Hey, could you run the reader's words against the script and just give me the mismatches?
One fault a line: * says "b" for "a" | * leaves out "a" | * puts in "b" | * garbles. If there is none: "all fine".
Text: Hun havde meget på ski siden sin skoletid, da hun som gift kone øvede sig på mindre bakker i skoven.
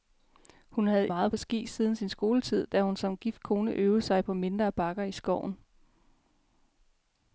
all fine